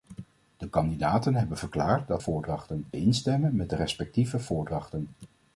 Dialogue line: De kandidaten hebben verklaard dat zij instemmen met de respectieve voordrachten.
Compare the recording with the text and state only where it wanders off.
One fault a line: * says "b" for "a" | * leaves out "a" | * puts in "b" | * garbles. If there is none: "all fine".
* says "voordrachten" for "zij"